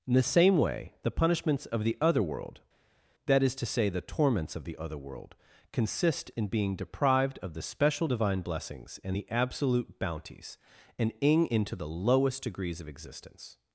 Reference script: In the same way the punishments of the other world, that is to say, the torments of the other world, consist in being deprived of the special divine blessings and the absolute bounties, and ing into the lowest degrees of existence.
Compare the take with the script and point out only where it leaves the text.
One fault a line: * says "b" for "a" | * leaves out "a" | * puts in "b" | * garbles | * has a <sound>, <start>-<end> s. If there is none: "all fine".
all fine